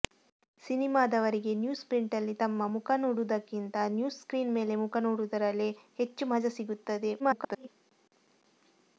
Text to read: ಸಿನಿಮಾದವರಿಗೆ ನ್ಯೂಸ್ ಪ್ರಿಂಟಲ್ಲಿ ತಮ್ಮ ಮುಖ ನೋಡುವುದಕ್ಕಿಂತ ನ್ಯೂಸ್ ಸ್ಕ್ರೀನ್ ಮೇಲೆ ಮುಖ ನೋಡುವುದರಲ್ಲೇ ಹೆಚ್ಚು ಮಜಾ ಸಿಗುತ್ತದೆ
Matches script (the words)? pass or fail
fail